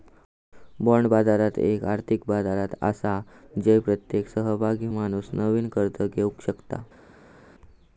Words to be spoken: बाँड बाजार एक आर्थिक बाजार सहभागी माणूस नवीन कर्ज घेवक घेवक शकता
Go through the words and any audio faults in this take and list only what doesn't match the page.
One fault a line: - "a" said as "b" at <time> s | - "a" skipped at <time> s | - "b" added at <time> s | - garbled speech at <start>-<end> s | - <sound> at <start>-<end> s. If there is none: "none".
- "आसा जय प्रत्येक" added at 2.8 s
- "घेवक" skipped at 6.4 s